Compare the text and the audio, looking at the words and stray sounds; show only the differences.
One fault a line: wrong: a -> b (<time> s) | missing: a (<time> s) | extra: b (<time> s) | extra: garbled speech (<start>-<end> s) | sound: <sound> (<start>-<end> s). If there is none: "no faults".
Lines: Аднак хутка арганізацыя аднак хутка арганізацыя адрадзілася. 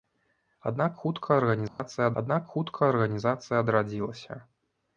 sound: dropout (1.7-1.8 s)